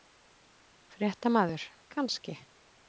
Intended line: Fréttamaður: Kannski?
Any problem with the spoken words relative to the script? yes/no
no